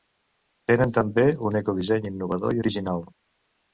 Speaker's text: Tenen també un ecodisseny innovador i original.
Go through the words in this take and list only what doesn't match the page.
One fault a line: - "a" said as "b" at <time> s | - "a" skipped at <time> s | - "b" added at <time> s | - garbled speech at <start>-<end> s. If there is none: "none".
none